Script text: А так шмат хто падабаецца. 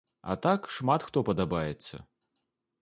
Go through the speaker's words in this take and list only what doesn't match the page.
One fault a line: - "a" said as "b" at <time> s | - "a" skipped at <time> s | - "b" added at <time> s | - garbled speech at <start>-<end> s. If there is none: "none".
none